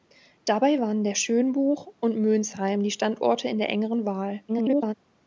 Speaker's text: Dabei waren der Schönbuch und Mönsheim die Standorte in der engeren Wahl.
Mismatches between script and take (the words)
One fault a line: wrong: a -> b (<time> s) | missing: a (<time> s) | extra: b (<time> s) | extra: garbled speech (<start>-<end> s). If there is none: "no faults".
extra: garbled speech (4.5-4.9 s)